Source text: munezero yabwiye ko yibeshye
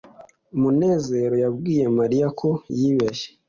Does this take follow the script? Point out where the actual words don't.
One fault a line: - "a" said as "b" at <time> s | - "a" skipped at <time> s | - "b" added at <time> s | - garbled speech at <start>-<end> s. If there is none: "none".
- "mariya" added at 2.0 s